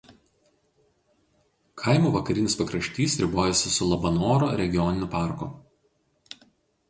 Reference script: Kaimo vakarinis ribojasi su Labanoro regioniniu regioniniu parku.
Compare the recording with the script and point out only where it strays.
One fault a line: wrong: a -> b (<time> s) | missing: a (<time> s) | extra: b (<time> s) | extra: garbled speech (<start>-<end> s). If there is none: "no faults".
extra: pakraštys (2.6 s)
missing: regioniniu (5.1 s)